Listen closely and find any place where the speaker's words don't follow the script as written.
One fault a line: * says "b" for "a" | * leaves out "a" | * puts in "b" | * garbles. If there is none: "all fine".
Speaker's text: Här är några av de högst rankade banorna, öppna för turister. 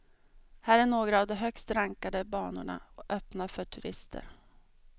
all fine